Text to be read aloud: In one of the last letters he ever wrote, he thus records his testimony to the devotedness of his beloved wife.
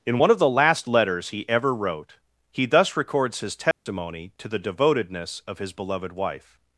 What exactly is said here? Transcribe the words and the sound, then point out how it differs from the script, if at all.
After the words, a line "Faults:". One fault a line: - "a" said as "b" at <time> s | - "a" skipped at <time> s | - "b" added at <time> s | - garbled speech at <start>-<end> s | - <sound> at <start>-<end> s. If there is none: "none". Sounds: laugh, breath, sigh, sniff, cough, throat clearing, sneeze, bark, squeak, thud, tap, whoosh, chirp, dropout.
In one of the last letters he ever wrote, he thus records his testimony to the devotedness of his beloved wife.
Faults:
- dropout at 3.7-3.9 s